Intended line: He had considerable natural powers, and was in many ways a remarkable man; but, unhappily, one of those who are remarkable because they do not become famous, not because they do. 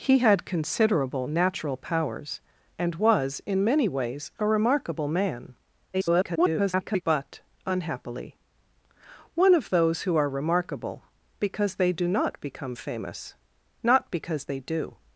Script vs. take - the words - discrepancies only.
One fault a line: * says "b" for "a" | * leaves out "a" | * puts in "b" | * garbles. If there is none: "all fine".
* garbles